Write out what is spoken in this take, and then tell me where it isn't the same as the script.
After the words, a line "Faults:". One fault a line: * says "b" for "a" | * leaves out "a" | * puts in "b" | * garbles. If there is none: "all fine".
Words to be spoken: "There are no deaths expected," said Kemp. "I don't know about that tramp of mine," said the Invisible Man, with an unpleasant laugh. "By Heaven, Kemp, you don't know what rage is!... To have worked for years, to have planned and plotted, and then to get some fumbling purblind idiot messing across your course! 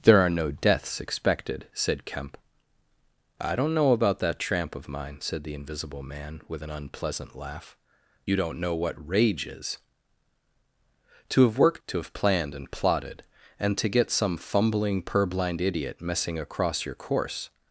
"There are no deaths expected," said Kemp. "I don't know about that tramp of mine," said the Invisible Man, with an unpleasant laugh. "You don't know what rage is!... To have worked to have planned and plotted, and to get some fumbling purblind idiot messing across your course!
Faults:
* leaves out "By Heaven Kemp"
* leaves out "for years"
* leaves out "then"